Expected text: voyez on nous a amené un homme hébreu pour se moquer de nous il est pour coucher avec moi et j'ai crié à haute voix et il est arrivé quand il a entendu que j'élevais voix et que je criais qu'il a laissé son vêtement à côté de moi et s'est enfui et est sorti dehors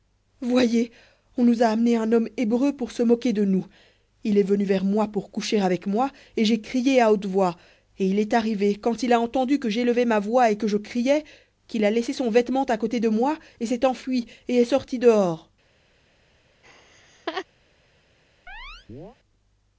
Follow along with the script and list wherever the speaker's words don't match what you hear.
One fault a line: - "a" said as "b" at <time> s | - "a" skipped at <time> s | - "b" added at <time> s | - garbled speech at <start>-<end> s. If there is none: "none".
- "venu vers moi" added at 4.4 s
- "ma" added at 10.1 s